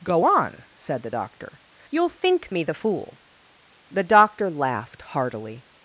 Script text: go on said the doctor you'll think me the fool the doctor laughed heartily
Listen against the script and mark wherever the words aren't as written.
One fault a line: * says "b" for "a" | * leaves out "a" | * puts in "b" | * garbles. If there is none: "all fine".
all fine